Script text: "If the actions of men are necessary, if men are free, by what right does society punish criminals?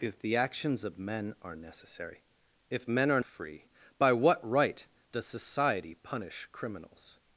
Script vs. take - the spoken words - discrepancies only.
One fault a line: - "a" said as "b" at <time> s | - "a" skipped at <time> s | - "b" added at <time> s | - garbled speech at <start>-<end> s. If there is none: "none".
none